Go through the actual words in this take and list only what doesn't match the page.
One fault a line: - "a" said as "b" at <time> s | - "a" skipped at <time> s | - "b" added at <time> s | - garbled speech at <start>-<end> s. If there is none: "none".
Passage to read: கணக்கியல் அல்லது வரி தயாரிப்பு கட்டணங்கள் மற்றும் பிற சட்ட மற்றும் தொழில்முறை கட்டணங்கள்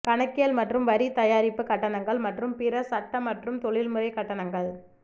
- "அல்லது" said as "மற்றும்" at 0.6 s